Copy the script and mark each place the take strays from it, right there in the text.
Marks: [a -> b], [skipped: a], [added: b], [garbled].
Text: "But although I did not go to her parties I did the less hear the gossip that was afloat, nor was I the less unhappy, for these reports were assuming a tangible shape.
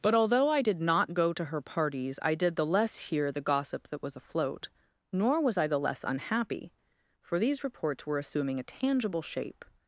"But although I did not go to her parties I did the less hear the gossip that was afloat, nor was I the less unhappy, for these reports were assuming a tangible shape.